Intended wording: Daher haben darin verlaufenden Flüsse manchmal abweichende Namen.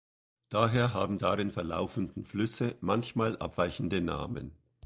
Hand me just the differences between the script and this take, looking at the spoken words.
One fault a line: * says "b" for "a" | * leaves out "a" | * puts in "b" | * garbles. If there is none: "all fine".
all fine